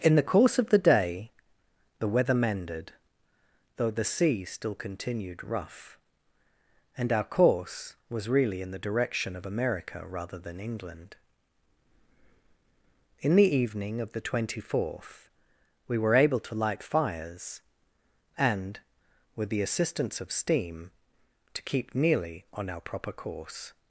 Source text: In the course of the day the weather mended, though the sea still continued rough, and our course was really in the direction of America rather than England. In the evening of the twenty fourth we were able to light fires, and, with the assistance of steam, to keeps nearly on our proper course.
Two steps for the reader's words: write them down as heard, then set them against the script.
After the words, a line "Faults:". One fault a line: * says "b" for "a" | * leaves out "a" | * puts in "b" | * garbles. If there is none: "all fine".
In the course of the day the weather mended, though the sea still continued rough, and our course was really in the direction of America rather than England. In the evening of the twenty fourth we were able to light fires, and, with the assistance of steam, to keep nearly on our proper course.
Faults:
* says "keep" for "keeps"